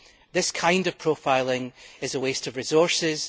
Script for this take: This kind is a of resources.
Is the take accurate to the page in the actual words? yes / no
no